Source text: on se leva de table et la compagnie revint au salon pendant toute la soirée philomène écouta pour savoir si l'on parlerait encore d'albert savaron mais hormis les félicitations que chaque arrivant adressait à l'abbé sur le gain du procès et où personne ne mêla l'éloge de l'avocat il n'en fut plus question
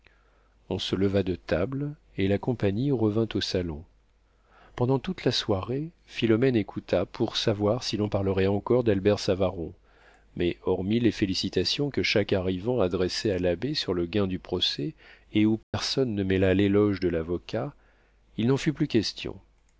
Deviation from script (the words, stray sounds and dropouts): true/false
true